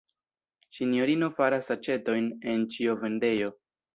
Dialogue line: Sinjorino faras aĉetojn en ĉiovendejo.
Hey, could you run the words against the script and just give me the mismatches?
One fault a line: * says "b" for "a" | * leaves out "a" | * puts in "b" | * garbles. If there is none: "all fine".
all fine